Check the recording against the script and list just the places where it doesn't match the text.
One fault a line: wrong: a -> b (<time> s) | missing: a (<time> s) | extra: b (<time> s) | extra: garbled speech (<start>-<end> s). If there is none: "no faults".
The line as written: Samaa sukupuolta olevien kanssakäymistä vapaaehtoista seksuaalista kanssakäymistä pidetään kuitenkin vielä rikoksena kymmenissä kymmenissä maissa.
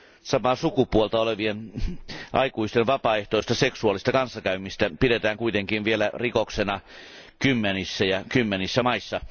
wrong: kanssakäymistä -> aikuisten (2.3 s)
extra: ja (8.0 s)